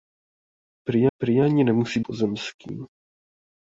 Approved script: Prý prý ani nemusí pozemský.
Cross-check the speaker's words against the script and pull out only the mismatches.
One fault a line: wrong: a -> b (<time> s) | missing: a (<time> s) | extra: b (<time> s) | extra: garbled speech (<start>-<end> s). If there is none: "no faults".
no faults